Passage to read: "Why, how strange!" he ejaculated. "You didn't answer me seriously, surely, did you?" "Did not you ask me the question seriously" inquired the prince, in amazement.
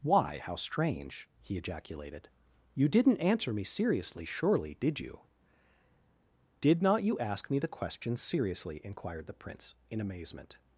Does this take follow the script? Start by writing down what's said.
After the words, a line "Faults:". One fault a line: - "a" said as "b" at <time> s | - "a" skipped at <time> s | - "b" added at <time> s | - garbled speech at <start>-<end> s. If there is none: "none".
"Why, how strange!" he ejaculated. "You didn't answer me seriously, surely, did you?" "Did not you ask me the question seriously" inquired the prince, in amazement.
Faults:
none